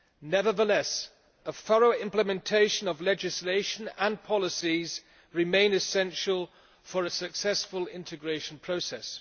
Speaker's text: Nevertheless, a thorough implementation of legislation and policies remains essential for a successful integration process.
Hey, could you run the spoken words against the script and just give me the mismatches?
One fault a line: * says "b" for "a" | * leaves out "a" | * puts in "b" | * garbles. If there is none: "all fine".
all fine